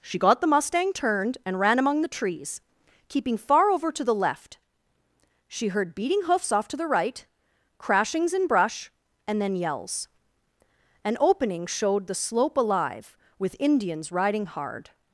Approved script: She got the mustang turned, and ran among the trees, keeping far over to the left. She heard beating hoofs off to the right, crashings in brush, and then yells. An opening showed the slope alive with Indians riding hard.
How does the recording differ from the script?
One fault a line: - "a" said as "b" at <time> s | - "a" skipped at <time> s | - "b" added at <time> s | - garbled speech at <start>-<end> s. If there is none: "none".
none